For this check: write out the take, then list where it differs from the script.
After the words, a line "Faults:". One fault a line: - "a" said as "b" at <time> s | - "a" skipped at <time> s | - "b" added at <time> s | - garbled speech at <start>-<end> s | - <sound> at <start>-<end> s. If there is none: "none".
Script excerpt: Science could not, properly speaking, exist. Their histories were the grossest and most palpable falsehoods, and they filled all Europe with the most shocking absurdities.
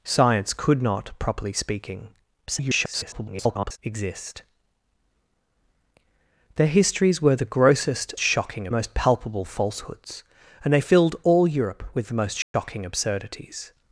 Science could not, properly speaking, [garbled] exist. Their histories were the grossest shocking most palpable falsehoods, and they filled all Europe with the most shocking absurdities.
Faults:
- garbled speech at 2.5-3.8 s
- "and" said as "shocking" at 8.2 s
- dropout at 12.4-12.5 s